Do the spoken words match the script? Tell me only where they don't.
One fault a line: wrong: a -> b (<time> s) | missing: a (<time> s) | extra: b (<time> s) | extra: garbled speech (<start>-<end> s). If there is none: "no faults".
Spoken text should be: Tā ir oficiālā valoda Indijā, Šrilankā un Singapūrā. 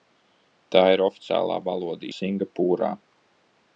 missing: Indijā Šrilankā un (2.1 s)